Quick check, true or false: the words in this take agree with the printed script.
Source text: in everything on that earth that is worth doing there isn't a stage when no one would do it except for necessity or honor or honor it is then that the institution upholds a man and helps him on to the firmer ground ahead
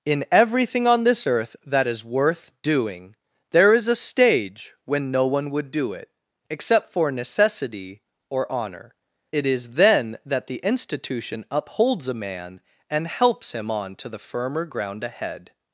false